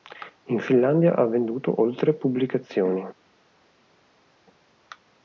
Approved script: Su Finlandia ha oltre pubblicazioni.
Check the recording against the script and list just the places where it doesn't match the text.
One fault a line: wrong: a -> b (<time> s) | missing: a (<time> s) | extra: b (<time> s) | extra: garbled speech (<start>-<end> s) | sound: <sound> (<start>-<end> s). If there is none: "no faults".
wrong: Su -> In (0.5 s)
extra: venduto (1.3 s)